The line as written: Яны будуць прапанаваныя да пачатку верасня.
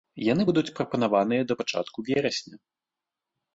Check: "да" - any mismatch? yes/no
no